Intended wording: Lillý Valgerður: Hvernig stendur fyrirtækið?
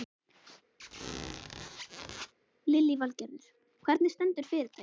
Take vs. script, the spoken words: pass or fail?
pass